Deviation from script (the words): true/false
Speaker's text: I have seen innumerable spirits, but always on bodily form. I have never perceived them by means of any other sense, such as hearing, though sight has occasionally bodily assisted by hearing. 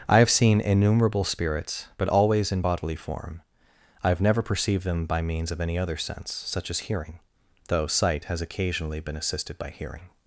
true